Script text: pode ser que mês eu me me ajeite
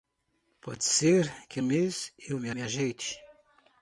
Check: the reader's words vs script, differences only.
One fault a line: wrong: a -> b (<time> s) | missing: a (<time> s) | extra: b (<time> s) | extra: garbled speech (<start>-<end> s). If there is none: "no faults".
no faults